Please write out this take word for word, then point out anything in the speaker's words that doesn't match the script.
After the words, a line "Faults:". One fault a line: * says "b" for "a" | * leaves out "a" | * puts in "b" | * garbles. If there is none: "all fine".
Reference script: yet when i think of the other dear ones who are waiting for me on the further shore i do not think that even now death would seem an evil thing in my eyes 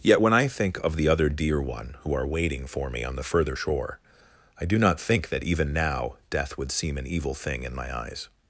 yet when i think of the other dear one who are waiting for me on the further shore i do not think that even now death would seem an evil thing in my eyes
Faults:
* says "one" for "ones"